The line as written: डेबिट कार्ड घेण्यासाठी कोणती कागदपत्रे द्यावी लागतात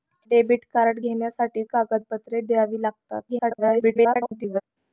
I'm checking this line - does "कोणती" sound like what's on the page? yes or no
no